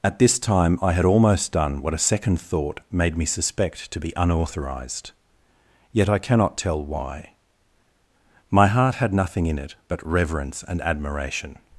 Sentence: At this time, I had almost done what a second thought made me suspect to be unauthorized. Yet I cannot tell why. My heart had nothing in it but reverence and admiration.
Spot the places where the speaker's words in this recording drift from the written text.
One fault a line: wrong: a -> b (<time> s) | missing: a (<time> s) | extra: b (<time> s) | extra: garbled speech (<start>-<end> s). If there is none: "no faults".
no faults